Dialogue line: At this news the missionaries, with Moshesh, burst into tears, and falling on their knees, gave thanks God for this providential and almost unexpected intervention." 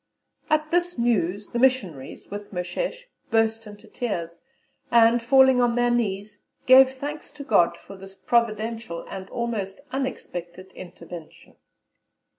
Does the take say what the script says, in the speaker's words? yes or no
no